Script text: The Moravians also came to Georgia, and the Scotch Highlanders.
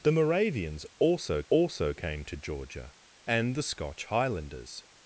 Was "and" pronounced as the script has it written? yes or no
yes